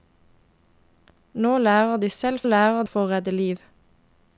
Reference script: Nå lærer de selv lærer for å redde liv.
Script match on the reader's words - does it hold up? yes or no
yes